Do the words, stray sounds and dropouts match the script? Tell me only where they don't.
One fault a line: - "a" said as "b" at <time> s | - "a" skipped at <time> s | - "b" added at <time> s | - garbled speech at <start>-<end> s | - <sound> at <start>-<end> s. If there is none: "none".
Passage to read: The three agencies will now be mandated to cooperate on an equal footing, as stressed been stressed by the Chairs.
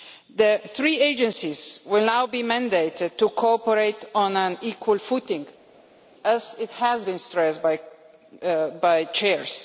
- "stressed" said as "has" at 6.8 s